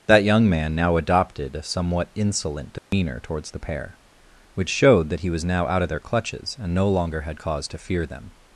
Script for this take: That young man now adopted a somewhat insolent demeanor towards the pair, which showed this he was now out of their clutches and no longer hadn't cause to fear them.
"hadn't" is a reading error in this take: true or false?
true